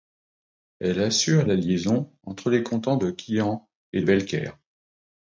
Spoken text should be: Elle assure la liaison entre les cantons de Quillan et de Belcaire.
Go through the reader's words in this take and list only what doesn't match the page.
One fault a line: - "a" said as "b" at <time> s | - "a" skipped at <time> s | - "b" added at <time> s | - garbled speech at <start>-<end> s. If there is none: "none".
- "de" skipped at 4.0 s